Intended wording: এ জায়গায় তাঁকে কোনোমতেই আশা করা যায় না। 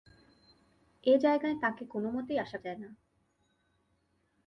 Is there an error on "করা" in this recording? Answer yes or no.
yes